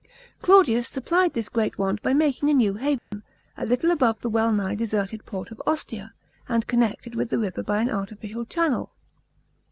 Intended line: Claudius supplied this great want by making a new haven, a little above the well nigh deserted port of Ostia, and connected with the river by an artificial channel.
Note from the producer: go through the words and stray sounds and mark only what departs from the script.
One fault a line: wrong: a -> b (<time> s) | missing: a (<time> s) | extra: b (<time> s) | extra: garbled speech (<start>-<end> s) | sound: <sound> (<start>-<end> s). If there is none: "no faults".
sound: dropout (3.0-3.1 s)